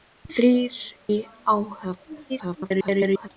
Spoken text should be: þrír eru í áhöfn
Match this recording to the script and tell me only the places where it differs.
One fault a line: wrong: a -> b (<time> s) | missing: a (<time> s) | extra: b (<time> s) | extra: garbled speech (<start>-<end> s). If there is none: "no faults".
missing: eru (0.8 s)
extra: garbled speech (2.3-3.3 s)